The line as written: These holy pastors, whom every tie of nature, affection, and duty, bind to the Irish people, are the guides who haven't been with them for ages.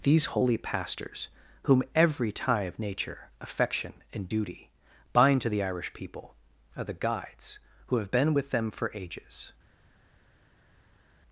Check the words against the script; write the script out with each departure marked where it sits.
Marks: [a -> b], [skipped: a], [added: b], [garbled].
These holy pastors, whom every tie of nature, affection, and duty, bind to the Irish people, are the guides who [haven't -> have] been with them for ages.